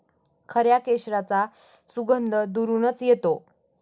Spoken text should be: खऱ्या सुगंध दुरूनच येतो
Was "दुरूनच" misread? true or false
false